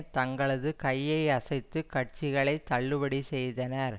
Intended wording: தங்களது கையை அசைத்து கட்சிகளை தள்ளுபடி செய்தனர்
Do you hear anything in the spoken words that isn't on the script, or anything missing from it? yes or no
no